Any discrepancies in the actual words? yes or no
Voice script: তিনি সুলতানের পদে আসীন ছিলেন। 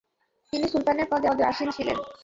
yes